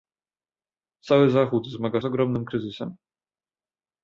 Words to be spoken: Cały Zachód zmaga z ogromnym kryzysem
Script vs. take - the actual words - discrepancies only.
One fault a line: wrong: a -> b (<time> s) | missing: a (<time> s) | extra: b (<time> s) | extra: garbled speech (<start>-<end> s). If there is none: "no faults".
no faults